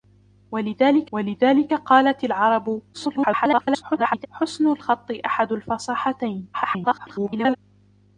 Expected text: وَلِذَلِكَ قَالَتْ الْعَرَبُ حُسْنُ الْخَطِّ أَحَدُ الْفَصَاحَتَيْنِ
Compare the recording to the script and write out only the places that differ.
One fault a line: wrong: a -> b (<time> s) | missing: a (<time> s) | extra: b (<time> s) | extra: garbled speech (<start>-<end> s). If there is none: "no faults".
extra: وَلِذَلِكَ (1.1 s)
extra: garbled speech (2.9-4.3 s)
extra: garbled speech (6.5-7.6 s)